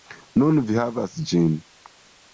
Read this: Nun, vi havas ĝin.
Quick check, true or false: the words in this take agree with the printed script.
true